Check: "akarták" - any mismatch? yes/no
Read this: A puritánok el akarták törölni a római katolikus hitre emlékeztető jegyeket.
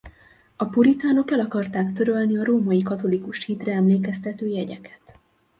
no